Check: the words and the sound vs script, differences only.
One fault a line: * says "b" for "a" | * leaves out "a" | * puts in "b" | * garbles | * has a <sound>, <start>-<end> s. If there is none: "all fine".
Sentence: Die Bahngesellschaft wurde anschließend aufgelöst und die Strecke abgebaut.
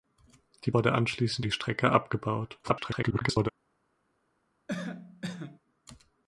* leaves out "Bahngesellschaft"
* leaves out "aufgelöst und"
* garbles
* has a cough, 4.7-5.6 s